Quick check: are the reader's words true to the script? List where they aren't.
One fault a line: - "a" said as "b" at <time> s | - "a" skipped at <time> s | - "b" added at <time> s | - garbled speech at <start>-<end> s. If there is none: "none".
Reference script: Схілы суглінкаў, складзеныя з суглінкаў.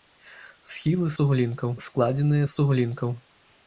none